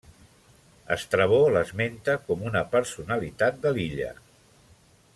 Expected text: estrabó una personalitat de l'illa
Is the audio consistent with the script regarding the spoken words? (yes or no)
no